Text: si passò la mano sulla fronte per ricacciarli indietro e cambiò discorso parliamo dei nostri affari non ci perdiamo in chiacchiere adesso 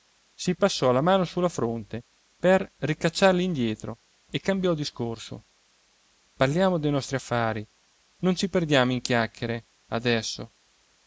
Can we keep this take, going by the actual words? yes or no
yes